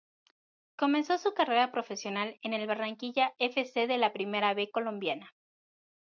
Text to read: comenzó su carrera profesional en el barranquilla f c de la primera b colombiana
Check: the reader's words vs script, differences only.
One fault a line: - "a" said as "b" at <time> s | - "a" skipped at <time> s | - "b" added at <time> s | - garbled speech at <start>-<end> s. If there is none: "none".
none